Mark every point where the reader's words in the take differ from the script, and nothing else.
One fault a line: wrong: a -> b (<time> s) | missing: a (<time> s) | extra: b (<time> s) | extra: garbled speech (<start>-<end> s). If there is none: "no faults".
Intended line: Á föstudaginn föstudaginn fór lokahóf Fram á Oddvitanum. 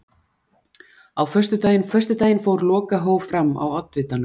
no faults